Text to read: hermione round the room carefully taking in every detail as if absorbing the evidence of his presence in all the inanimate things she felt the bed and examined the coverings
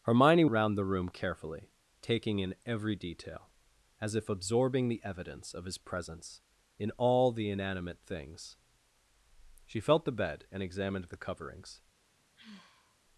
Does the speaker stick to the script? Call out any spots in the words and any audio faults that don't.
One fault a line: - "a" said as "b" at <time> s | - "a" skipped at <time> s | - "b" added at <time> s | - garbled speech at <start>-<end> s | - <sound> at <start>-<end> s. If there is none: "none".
- sigh at 12.4-13.0 s